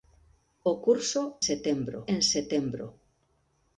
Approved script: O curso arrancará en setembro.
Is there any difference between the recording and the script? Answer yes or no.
yes